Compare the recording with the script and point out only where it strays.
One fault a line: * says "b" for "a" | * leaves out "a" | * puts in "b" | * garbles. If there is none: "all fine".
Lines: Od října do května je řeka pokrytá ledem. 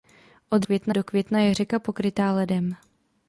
* says "května" for "října"